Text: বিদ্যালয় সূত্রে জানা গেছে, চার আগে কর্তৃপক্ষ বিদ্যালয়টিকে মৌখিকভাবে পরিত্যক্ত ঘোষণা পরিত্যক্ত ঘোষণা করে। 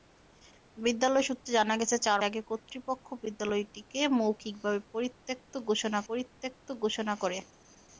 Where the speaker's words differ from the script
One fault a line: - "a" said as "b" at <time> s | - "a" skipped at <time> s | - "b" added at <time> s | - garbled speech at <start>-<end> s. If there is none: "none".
none